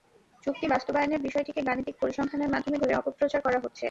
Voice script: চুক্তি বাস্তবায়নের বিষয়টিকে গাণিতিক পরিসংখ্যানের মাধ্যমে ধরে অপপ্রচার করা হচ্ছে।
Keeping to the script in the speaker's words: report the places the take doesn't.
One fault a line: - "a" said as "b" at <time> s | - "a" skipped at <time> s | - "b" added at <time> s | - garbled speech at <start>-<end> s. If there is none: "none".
none